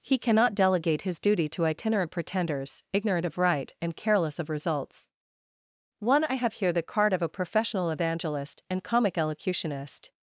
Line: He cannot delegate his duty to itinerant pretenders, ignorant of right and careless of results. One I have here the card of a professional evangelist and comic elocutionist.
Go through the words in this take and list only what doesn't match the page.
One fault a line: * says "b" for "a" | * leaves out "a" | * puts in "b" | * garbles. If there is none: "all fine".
all fine